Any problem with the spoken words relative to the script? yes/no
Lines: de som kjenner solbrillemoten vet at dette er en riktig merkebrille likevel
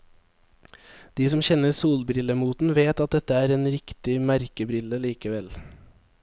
no